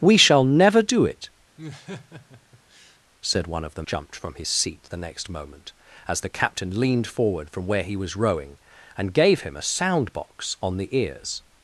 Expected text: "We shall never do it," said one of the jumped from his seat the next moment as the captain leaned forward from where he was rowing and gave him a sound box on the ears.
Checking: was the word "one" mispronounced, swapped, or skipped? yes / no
no